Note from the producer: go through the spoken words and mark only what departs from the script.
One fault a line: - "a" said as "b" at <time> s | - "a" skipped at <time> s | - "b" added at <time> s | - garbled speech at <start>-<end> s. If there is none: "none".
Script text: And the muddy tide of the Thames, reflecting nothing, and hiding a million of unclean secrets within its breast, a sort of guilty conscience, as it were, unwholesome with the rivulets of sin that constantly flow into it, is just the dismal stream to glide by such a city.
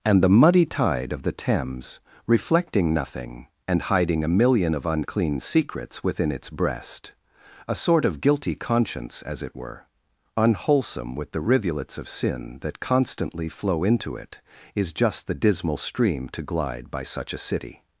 none